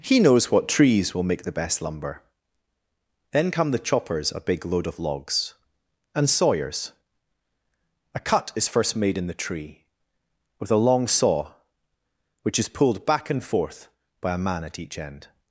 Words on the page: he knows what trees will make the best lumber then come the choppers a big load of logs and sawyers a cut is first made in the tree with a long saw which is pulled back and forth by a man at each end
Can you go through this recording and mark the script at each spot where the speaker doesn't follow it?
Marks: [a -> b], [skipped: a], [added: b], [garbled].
he knows what trees will make the best lumber then come the choppers a big load of logs and sawyers a cut is first made in the tree with a long saw which is pulled back and forth by a man at each end